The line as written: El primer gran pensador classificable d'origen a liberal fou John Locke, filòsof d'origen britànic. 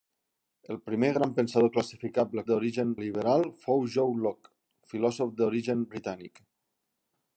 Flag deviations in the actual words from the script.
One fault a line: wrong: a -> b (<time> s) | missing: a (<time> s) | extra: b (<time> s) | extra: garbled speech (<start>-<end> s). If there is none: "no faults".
no faults